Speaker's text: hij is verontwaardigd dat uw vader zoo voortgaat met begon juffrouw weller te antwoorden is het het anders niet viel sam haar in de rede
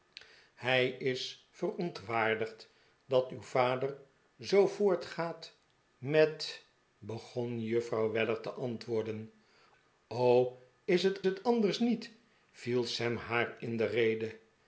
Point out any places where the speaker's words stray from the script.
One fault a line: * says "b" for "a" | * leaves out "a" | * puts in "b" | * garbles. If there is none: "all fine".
all fine